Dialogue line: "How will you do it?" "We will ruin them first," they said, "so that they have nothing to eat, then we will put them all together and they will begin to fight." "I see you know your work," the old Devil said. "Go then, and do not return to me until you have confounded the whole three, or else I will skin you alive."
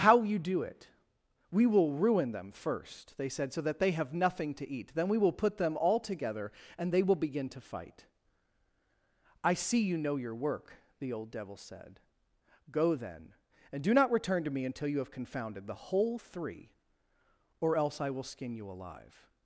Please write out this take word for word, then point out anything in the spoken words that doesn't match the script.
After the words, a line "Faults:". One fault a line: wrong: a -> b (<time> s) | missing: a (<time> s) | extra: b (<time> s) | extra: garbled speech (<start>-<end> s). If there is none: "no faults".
"How you do it?" "We will ruin them first," they said, "so that they have nothing to eat, then we will put them all together and they will begin to fight." "I see you know your work," the old Devil said. "Go then, and do not return to me until you have confounded the whole three, or else I will skin you alive."
Faults:
missing: will (0.2 s)